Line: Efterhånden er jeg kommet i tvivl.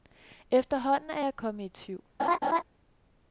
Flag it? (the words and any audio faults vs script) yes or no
yes